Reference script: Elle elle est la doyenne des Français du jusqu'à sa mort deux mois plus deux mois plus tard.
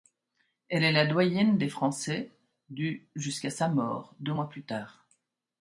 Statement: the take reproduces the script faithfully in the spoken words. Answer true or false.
false